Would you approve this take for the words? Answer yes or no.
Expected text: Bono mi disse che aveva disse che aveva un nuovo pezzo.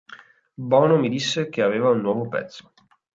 no